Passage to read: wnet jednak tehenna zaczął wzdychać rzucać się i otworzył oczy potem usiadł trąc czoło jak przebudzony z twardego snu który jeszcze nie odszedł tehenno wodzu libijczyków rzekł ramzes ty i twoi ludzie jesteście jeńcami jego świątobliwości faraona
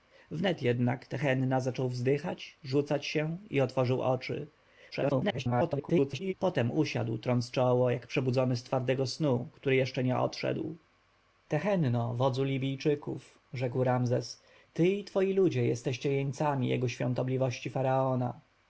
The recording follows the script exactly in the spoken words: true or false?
false